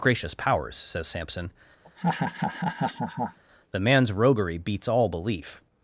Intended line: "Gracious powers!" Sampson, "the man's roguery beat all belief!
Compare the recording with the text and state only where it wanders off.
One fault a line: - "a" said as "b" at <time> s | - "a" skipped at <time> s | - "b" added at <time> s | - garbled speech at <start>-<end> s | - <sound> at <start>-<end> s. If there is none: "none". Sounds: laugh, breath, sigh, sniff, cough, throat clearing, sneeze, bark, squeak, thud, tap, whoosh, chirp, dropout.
- "says" added at 0.8 s
- laugh at 1.8-3.4 s
- "beat" said as "beats" at 4.6 s